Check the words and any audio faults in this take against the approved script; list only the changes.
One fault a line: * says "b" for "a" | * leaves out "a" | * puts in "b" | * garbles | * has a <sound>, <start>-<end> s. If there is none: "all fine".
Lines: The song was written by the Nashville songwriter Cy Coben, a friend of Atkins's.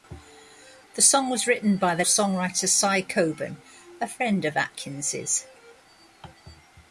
* leaves out "Nashville"